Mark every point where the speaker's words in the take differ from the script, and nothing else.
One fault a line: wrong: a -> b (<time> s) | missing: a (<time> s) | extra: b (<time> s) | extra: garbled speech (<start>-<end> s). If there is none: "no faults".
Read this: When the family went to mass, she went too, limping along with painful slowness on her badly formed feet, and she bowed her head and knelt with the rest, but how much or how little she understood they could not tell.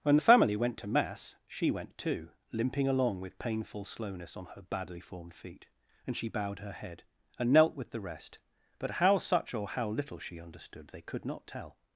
wrong: much -> such (9.2 s)